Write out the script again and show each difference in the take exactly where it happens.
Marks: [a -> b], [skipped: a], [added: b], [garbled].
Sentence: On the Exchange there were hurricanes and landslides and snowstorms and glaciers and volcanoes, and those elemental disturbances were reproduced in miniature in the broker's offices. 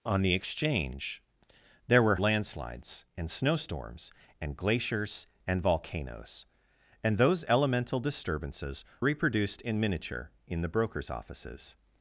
On the Exchange there were [skipped: hurricanes and] landslides and snowstorms and glaciers and volcanoes, and those elemental disturbances [skipped: were] reproduced in miniature in the broker's offices.